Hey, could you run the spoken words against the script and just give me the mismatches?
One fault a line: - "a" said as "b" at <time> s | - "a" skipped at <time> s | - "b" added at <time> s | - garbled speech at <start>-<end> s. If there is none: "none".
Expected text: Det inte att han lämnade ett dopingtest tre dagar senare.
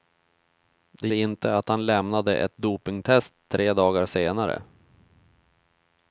none